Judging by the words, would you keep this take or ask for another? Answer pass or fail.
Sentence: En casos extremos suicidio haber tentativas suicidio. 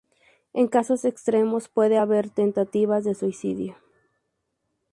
fail